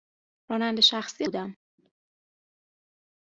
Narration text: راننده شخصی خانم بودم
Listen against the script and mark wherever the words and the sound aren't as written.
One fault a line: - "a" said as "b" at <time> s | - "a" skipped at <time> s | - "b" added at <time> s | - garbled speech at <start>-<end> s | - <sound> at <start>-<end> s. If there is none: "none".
- "خانم" skipped at 1.3 s